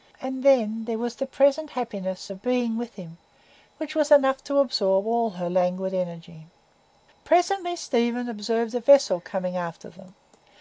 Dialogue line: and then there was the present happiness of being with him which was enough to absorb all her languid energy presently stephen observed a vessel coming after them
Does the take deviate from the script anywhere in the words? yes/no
no